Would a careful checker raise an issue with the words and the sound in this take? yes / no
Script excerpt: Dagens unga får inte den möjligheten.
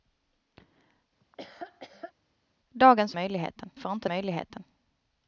yes